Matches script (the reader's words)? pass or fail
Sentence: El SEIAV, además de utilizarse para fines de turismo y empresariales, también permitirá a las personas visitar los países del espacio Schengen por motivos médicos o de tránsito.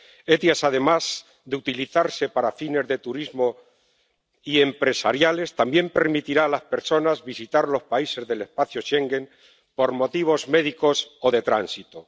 pass